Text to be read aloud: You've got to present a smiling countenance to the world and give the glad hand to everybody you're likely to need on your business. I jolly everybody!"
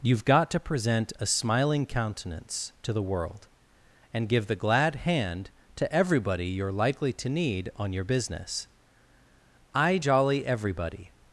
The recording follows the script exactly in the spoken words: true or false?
true